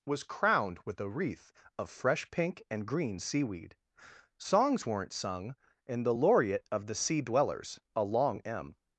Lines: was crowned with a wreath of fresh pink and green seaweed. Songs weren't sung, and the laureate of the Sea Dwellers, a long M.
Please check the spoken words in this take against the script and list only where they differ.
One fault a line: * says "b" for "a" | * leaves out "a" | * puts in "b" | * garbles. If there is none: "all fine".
all fine